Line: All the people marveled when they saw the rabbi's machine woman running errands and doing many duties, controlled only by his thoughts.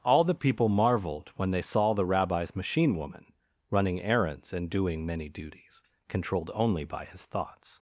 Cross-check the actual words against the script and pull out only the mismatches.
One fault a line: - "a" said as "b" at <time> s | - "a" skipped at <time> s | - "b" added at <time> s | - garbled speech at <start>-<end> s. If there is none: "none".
none